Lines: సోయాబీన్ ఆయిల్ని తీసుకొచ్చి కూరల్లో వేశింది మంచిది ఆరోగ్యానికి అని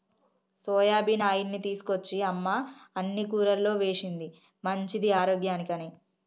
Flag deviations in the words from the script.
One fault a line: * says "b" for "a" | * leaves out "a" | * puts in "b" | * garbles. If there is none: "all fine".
* puts in "అమ్మ అన్ని"